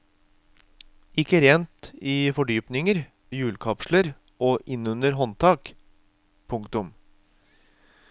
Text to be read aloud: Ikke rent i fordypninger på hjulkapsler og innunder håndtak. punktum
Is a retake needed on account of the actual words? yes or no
yes